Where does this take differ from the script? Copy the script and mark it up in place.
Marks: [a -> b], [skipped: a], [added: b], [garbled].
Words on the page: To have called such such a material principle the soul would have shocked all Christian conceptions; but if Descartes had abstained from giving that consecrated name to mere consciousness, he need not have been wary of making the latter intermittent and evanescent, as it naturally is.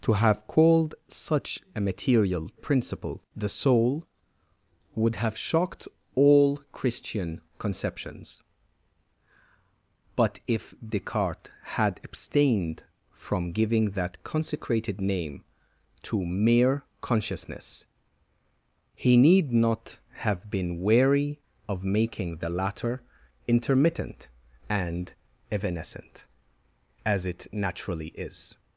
To have called such [skipped: such] a material principle the soul would have shocked all Christian conceptions; but if Descartes had abstained from giving that consecrated name to mere consciousness, he need not have been wary of making the latter intermittent and evanescent, as it naturally is.